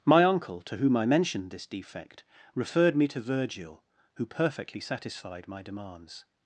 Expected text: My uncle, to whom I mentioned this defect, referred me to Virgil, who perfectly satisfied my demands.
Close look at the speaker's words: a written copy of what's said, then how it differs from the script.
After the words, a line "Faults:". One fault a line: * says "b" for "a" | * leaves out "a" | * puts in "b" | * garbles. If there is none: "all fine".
My uncle, to whom I mentioned this defect, referred me to Virgil, who perfectly satisfied my demands.
Faults:
all fine